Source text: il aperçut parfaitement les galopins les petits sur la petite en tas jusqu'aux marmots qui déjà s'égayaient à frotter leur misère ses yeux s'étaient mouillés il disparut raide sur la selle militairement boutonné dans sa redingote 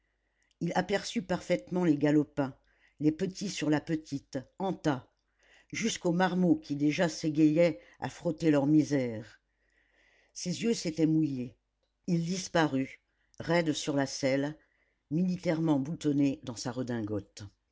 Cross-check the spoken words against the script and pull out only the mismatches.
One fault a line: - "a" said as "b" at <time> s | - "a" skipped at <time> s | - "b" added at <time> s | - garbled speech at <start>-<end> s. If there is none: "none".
none